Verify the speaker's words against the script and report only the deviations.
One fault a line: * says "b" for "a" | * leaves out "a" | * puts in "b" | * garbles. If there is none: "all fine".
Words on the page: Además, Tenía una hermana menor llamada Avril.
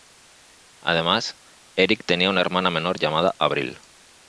* puts in "Eric"